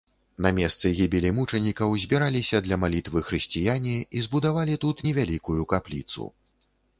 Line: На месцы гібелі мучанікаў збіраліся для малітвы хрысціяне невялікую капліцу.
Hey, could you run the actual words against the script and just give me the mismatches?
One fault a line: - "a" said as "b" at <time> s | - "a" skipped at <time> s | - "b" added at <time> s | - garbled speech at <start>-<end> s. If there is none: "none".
- "і збудавалі тут" added at 4.0 s